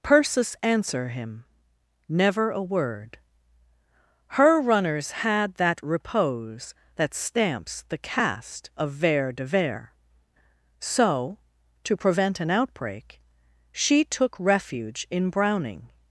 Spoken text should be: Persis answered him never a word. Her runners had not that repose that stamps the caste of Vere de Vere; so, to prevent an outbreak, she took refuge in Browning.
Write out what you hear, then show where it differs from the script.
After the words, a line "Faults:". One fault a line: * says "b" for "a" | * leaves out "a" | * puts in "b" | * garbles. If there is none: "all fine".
Persis answer him never a word. Her runners had that repose that stamps the caste of Vere de Vere; so, to prevent an outbreak, she took refuge in Browning.
Faults:
* says "answer" for "answered"
* leaves out "not"